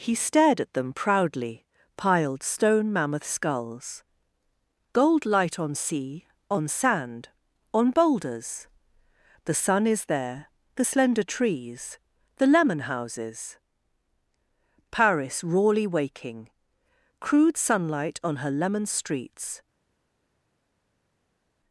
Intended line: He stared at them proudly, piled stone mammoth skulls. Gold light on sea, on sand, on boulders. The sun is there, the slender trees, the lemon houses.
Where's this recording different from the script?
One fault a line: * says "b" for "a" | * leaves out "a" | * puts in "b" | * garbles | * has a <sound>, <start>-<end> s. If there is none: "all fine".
* puts in "Paris rawly waking crude sunlight on her lemon streets"